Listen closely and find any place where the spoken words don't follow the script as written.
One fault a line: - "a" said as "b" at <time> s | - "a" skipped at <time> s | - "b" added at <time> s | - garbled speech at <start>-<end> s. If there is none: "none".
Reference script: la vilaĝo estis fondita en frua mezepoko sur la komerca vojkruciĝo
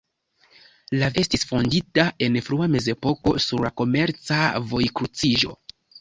- "vilaĝo" skipped at 1.1 s